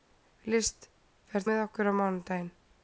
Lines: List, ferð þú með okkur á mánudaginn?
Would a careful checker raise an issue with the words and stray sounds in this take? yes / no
yes